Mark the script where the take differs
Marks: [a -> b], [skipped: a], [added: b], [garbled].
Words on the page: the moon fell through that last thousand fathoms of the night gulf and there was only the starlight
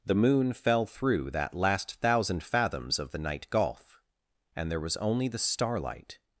the moon fell through that last thousand fathoms of the night gulf and there was only the starlight